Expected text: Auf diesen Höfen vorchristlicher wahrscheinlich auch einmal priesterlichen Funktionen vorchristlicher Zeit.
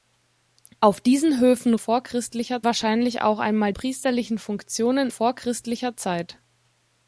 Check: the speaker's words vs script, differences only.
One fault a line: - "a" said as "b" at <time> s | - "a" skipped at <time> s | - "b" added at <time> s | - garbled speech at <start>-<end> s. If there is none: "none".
none